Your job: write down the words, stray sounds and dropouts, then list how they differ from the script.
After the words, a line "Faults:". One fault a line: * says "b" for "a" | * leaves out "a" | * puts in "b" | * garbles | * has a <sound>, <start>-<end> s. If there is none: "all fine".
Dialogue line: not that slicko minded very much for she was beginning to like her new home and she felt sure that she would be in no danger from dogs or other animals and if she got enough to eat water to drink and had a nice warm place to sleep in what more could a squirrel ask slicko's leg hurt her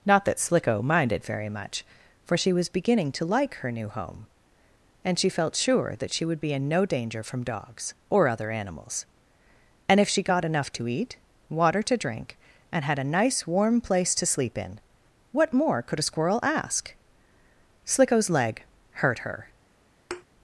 not that slicko minded very much for she was beginning to like her new home and she felt sure that she would be in no danger from dogs or other animals and if she got enough to eat water to drink and had a nice warm place to sleep in what more could a squirrel ask slicko's leg hurt her
Faults:
* has a thud, 20.1-20.3 s